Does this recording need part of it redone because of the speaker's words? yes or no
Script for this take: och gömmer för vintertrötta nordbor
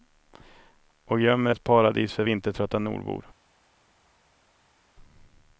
yes